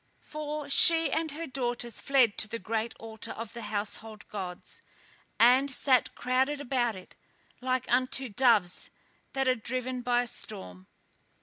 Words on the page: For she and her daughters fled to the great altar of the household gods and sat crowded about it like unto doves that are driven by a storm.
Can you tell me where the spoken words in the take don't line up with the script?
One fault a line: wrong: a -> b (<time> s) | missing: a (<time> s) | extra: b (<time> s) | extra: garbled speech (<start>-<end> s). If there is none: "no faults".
no faults